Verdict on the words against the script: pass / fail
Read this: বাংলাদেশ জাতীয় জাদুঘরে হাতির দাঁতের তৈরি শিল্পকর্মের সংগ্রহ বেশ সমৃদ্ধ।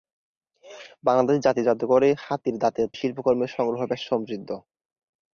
fail